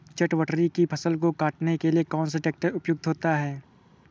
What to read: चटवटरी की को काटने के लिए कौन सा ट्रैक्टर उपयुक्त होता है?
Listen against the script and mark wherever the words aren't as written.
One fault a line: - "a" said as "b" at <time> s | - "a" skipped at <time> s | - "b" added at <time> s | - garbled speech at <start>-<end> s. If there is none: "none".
- "फसल" added at 0.8 s